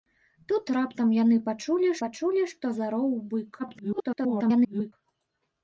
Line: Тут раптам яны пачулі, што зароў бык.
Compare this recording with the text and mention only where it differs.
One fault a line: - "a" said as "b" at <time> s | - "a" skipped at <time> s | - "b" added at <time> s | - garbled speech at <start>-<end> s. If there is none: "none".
- "пачулі" added at 2.0 s
- garbled speech at 3.6-4.9 s